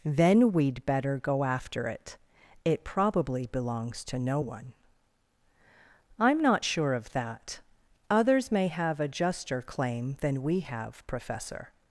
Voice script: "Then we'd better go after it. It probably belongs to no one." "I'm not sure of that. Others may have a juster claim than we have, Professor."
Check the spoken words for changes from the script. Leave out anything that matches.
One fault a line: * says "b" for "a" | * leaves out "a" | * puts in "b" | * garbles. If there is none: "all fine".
all fine